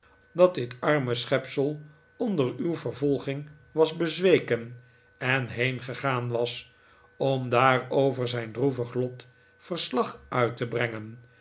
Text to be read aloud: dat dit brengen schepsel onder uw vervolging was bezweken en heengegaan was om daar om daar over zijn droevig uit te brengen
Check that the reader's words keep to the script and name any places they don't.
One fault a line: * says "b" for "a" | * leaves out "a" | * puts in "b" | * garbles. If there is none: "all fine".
* says "arme" for "brengen"
* leaves out "om daar"
* puts in "lot verslag"